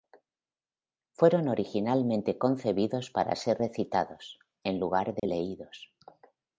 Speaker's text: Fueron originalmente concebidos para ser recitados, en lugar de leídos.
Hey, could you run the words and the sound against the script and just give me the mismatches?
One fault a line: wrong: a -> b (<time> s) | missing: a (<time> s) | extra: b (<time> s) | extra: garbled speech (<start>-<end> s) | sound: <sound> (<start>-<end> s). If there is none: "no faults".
sound: dropout (5.2-5.2 s)